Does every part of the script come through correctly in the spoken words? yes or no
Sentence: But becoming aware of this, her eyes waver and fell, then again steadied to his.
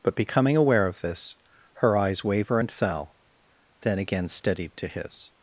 yes